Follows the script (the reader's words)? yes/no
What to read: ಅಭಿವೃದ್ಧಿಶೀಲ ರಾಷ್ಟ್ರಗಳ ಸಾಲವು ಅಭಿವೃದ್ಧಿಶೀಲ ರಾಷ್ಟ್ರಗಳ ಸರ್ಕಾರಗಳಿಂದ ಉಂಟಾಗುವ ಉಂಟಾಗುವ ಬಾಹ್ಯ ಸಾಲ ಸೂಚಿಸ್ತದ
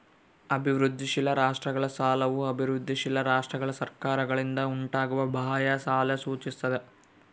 no